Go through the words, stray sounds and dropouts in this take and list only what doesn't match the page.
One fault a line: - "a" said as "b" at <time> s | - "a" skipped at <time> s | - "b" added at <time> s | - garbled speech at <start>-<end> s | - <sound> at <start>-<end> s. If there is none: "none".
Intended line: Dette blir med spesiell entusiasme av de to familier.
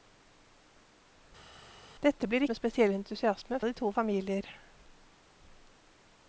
none